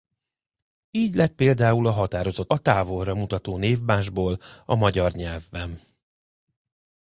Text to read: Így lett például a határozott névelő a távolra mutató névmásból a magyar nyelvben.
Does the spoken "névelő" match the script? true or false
false